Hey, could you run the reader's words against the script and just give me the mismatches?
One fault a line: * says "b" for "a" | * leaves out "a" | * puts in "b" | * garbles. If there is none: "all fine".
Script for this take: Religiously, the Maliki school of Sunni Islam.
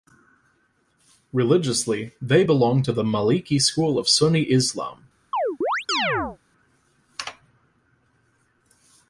* puts in "they belong to"